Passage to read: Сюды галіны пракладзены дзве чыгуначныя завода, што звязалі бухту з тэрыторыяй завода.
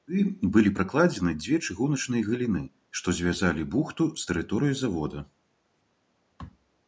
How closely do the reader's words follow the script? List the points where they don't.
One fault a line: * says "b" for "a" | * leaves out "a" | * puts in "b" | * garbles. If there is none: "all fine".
* says "былі" for "галіны"
* says "галіны" for "завода"